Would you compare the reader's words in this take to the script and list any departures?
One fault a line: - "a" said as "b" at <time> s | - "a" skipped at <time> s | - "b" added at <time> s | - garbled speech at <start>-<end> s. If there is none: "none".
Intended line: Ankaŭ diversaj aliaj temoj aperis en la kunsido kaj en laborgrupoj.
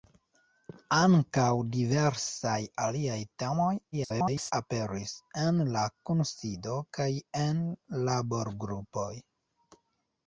- garbled speech at 3.9-4.5 s